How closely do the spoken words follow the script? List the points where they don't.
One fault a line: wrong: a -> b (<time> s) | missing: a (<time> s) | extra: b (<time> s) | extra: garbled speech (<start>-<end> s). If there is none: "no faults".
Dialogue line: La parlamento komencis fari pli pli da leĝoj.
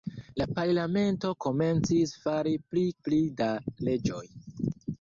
no faults